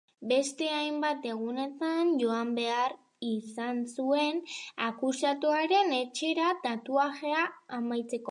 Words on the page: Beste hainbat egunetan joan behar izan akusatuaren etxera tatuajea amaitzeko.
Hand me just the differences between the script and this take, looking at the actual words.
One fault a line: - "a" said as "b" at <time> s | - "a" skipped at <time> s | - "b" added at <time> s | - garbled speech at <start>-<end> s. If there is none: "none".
- "zuen" added at 4.0 s